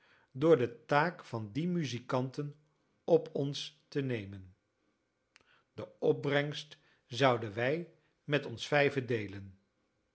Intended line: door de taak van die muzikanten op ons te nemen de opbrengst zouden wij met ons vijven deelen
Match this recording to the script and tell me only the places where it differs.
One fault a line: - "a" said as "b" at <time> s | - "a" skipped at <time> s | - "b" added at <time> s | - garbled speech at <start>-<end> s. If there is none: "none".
none